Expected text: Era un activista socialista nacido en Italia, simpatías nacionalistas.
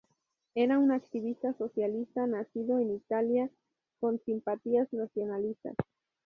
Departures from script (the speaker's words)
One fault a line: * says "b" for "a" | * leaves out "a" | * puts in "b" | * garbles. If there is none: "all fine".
* puts in "con"